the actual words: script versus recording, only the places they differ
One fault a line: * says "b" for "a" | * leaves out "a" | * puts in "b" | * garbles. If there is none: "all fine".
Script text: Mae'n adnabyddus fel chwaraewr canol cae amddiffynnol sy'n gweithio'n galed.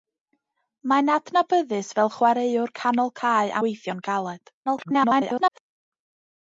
* leaves out "amddiffynnol sy'n"
* garbles